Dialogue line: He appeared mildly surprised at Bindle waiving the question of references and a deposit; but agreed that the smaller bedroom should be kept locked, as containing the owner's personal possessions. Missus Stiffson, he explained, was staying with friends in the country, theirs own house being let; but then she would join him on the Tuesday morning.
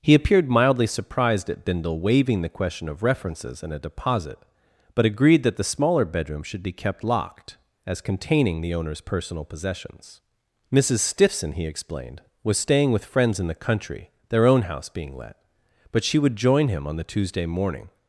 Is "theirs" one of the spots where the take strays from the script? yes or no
yes